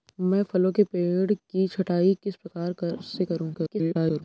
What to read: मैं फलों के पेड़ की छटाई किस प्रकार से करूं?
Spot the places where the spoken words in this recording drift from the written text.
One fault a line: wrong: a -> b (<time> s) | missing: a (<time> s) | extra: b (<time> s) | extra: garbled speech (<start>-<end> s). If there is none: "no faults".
extra: garbled speech (3.5-4.2 s)